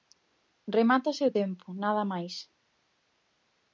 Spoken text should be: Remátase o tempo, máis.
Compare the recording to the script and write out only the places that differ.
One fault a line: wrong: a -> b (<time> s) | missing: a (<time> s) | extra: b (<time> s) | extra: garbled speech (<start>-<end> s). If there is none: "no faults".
extra: nada (1.8 s)